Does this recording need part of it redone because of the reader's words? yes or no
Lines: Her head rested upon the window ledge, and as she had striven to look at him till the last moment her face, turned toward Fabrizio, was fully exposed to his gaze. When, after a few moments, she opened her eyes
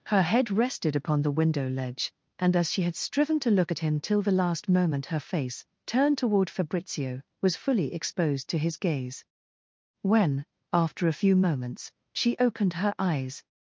no